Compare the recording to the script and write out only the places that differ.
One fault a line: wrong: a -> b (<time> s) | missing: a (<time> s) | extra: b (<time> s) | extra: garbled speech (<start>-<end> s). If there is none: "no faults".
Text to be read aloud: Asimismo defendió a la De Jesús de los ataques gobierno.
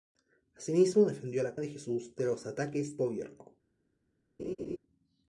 no faults